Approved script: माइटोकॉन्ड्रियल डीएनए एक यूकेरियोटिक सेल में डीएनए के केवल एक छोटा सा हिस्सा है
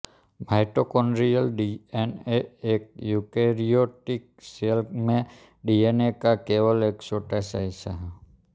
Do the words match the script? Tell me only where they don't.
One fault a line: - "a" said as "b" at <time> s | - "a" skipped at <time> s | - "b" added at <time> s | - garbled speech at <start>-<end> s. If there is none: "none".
- "के" said as "का" at 6.2 s